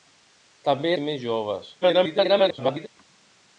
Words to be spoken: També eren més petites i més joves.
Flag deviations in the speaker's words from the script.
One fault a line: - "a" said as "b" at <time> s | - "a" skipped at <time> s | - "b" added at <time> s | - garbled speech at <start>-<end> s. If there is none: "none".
- "eren més petites" skipped at 0.9 s
- garbled speech at 1.8-2.9 s